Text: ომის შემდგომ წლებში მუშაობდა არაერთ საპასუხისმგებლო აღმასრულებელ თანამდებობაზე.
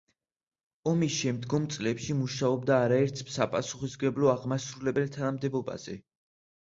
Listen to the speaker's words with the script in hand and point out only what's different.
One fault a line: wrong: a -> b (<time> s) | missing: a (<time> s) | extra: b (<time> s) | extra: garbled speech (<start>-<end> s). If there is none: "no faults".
no faults